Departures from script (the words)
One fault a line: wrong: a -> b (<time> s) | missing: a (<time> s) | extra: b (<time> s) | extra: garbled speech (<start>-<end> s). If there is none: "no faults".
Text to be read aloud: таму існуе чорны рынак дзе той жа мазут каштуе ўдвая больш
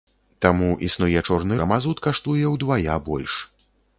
missing: рынак дзе той (1.6 s)